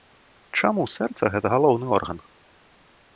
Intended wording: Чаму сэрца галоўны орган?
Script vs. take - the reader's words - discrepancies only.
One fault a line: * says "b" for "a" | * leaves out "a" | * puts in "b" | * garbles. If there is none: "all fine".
* puts in "гэта"